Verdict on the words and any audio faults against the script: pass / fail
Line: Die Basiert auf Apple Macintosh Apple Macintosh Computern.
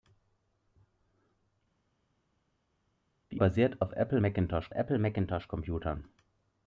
pass